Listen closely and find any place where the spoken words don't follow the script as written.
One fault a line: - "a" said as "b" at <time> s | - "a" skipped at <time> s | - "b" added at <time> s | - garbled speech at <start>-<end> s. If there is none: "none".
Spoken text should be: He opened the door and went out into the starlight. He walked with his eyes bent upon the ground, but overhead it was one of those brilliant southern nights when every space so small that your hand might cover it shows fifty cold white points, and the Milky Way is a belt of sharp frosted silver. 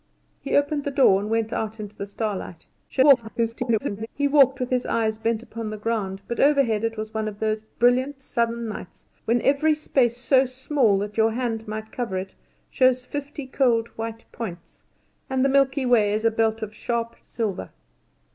- garbled speech at 2.9-4.1 s
- "frosted" skipped at 17.1 s